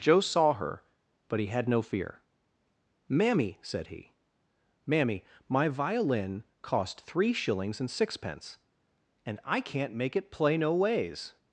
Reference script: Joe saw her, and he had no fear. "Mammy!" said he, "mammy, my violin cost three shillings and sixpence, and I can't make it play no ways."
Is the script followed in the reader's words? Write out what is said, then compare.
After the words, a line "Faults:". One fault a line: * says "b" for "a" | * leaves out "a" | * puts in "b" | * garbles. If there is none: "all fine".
Joe saw her, but he had no fear. "Mammy!" said he, "mammy, my violin cost three shillings and sixpence, and I can't make it play no ways."
Faults:
* says "but" for "and"